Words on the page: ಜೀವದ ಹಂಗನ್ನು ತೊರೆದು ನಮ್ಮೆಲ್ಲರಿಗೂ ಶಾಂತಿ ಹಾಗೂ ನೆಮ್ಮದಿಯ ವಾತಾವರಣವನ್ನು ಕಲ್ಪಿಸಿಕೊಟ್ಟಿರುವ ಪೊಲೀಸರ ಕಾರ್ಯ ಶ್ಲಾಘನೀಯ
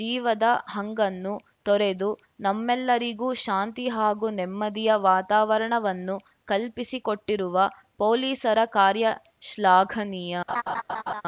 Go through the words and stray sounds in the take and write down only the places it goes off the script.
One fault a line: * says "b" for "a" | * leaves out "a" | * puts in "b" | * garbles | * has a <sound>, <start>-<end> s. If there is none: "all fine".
* has a laugh, 10.5-11.2 s